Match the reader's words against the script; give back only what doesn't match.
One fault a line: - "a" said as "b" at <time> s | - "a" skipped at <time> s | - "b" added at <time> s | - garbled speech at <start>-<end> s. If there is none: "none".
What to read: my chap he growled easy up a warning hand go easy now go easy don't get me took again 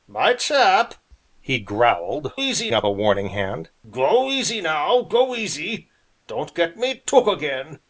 none